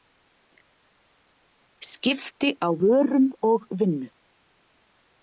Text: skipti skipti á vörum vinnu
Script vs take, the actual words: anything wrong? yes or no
yes